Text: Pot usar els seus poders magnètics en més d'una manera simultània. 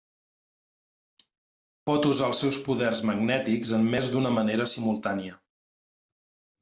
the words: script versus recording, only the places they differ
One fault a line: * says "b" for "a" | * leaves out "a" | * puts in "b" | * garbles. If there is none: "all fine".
all fine